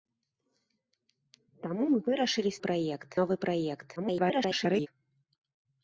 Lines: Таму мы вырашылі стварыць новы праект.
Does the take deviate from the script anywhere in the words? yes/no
yes